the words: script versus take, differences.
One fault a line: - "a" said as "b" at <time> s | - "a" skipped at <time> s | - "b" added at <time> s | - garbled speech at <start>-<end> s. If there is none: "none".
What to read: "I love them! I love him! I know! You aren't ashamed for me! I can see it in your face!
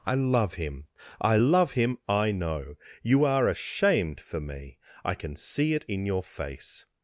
- "them" said as "him" at 0.6 s
- "aren't" said as "are" at 3.2 s